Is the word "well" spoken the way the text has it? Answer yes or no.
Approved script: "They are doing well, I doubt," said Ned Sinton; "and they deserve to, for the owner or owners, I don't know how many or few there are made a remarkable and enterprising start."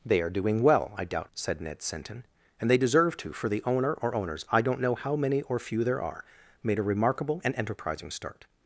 yes